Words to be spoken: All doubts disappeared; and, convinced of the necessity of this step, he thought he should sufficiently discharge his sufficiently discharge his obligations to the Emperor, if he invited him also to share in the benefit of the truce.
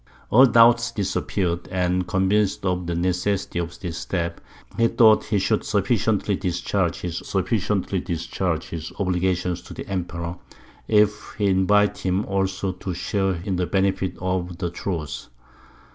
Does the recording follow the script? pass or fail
pass